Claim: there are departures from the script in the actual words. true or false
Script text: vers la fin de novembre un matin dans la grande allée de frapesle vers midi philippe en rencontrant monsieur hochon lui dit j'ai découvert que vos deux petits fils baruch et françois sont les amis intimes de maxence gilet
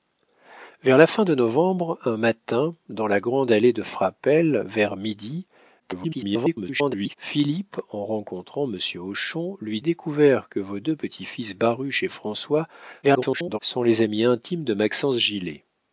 true